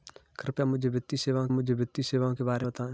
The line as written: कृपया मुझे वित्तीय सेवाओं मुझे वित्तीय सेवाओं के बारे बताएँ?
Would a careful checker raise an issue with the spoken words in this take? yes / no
no